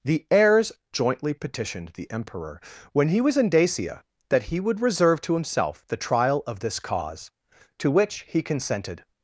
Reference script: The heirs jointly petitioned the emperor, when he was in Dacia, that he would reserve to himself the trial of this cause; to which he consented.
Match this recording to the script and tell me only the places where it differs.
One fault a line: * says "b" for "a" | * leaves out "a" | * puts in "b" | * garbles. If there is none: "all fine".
all fine